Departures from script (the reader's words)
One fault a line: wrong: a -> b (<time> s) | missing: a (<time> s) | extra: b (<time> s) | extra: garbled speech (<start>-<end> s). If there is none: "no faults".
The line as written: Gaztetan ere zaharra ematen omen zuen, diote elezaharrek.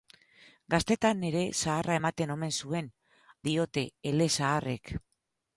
no faults